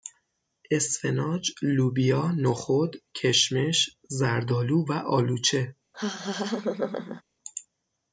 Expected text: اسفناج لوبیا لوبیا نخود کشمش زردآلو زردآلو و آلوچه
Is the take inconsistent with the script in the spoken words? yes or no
yes